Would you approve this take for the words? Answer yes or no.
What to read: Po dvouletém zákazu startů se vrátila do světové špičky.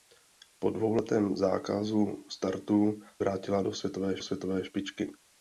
no